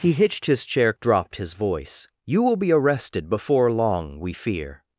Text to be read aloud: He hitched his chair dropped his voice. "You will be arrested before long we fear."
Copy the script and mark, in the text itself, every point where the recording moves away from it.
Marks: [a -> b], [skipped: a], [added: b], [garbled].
He hitched his chair dropped his voice. "You will be arrested before long we fear."